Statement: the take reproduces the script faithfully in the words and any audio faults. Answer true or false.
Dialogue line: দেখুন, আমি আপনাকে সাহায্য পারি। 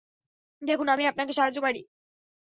true